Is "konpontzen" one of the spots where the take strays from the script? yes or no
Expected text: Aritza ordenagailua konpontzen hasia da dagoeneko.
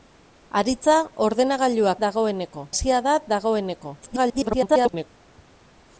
yes